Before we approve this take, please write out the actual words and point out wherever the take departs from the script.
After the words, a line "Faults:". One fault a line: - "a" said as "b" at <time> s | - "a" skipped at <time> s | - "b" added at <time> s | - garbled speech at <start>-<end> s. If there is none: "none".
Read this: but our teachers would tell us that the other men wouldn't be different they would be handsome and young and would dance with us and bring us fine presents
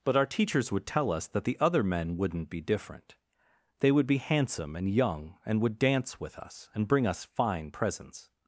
but our teachers would tell us that the other men wouldn't be different they would be handsome and young and would dance with us and bring us fine presents
Faults:
none